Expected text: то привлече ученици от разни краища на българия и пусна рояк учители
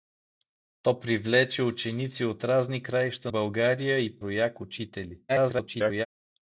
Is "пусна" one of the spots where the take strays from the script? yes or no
yes